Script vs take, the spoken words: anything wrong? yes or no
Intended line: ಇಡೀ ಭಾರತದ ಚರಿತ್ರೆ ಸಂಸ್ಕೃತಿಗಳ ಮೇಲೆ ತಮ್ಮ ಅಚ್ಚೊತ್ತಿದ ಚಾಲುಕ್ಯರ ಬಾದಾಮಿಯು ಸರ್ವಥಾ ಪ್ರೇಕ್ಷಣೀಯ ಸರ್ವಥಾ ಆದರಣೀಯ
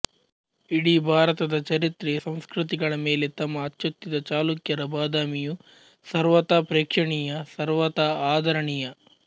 no